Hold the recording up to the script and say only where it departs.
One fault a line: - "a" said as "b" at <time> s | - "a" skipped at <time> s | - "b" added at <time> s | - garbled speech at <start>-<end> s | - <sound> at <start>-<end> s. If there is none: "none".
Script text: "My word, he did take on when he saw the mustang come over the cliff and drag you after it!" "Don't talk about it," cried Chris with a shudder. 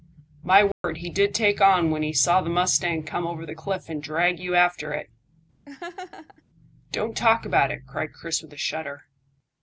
- dropout at 0.7-0.8 s
- laugh at 5.7-6.4 s